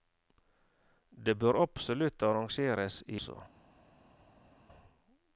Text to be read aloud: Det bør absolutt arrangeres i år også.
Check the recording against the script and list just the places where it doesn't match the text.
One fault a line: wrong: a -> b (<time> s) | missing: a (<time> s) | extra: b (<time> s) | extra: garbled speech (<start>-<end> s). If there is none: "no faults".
missing: år (3.2 s)